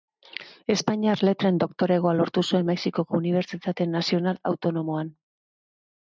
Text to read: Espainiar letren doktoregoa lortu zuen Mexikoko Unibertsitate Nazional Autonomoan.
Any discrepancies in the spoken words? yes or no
no